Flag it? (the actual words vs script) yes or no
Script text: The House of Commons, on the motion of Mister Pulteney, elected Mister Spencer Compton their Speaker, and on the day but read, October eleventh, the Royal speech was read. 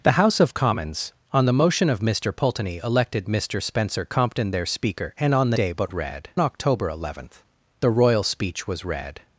no